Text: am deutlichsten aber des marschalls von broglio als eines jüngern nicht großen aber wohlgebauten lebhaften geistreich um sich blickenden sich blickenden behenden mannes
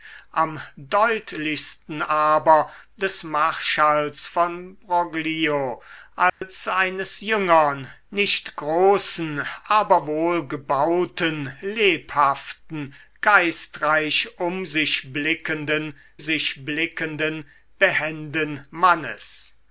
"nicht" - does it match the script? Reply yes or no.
yes